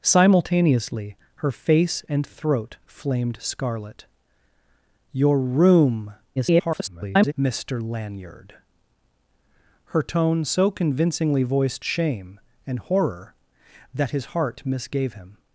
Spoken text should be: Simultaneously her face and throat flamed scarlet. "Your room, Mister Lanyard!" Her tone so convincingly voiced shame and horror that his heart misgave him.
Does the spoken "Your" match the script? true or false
true